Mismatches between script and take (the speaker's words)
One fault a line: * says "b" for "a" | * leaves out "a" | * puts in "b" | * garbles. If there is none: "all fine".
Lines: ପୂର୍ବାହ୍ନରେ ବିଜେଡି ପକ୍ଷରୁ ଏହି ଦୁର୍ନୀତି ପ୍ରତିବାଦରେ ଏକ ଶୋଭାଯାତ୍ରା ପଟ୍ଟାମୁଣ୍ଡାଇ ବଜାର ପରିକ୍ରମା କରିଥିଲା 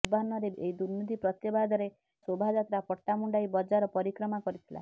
* leaves out "ବିଜେଡି ପକ୍ଷରୁ"
* leaves out "ଏକ"